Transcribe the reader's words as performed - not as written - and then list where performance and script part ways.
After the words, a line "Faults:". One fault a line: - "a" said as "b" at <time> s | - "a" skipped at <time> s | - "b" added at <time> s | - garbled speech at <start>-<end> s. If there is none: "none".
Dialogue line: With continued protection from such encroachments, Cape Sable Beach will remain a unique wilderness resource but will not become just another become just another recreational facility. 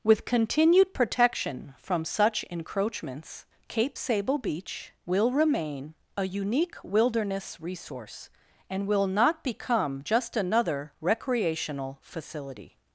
With continued protection from such encroachments, Cape Sable Beach will remain a unique wilderness resource and will not become just another recreational facility.
Faults:
- "but" said as "and" at 8.7 s
- "become just another" skipped at 10.9 s